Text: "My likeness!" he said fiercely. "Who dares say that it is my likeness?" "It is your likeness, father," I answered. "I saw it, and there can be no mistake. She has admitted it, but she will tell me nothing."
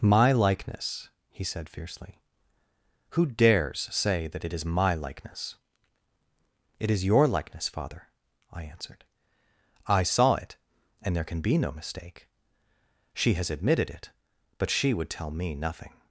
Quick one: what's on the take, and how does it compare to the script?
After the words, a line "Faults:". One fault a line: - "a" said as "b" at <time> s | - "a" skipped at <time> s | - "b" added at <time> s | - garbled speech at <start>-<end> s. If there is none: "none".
"My likeness!" he said fiercely. "Who dares say that it is my likeness?" "It is your likeness, father," I answered. "I saw it, and there can be no mistake. She has admitted it, but she would tell me nothing."
Faults:
- "will" said as "would" at 14.9 s